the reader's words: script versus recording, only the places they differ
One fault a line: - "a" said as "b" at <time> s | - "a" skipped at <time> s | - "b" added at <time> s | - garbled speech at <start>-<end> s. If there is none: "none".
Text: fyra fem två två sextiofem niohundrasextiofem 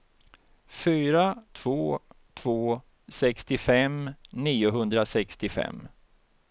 - "fem" skipped at 1.4 s